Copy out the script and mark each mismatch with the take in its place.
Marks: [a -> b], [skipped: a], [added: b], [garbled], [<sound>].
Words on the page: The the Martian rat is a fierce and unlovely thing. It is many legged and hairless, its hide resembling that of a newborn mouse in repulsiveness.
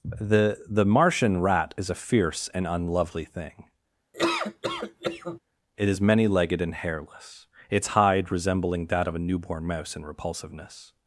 The the Martian rat is a fierce and unlovely thing. [laugh] It is many legged and hairless, its hide resembling that of a newborn mouse in repulsiveness.